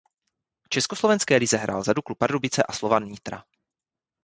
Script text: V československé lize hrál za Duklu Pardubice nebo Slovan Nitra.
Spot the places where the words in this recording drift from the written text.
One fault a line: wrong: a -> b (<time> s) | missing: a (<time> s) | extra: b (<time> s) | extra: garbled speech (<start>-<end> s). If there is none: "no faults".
wrong: nebo -> a (2.6 s)